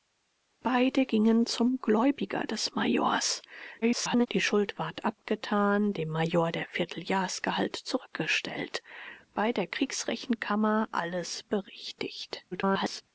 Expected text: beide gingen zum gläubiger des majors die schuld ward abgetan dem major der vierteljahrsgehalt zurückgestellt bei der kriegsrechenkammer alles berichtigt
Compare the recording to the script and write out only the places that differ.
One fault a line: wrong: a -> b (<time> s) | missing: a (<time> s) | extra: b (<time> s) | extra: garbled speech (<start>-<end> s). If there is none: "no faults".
extra: garbled speech (3.8-4.3 s)
extra: garbled speech (12.5-13.0 s)